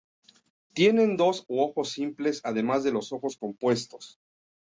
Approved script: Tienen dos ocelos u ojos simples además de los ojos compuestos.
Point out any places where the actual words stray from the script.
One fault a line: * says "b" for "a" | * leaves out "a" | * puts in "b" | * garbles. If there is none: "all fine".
* leaves out "ocelos"